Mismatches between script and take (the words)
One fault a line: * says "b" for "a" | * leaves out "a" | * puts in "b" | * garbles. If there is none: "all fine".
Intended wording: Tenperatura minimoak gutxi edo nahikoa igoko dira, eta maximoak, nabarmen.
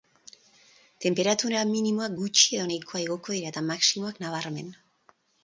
all fine